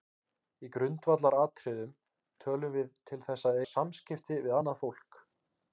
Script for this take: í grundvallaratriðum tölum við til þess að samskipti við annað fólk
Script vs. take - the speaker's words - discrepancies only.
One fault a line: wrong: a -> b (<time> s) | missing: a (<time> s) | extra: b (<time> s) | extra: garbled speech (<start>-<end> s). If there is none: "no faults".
no faults